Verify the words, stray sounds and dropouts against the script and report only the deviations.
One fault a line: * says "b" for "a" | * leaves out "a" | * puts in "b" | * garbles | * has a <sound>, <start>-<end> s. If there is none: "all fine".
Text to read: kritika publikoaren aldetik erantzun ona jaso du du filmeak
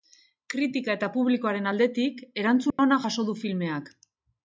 * puts in "eta"
* has a dropout, 2.7-2.8 s
* leaves out "du"